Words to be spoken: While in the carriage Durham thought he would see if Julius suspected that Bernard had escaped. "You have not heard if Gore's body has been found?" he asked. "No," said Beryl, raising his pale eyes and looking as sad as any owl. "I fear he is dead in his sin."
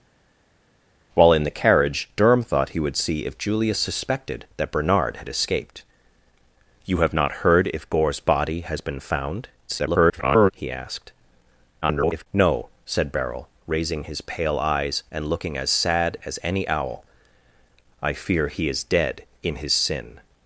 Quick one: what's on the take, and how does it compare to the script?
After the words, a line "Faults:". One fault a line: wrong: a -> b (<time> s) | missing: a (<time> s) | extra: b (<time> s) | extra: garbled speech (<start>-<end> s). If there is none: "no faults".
While in the carriage Durham thought he would see if Julius suspected that Bernard had escaped. "You have not heard if Gore's body has been found?" [garbled] he asked. [garbled] "No," said Beryl, raising his pale eyes and looking as sad as any owl. "I fear he is dead in his sin."
Faults:
extra: garbled speech (9.7-10.5 s)
extra: garbled speech (11.8-12.3 s)